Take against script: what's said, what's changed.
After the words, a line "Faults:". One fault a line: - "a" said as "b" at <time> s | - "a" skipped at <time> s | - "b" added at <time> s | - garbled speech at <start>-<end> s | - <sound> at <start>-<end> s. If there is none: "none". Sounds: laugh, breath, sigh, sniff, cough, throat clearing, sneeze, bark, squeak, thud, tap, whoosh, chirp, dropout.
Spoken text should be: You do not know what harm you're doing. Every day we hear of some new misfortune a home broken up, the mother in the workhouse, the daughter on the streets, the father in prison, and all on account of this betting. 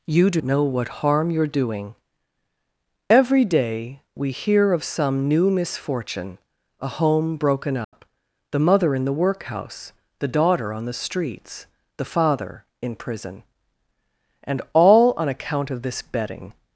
You do know what harm you're doing. Every day we hear of some new misfortune a home broken up, the mother in the workhouse, the daughter on the streets, the father in prison, and all on account of this betting.
Faults:
- "not" skipped at 0.4 s
- dropout at 7.8-7.9 s